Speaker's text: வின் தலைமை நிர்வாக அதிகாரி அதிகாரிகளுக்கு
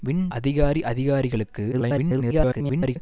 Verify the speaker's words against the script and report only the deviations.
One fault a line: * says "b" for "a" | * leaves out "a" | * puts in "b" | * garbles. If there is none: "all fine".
* leaves out "தலைமை நிர்வாக"
* garbles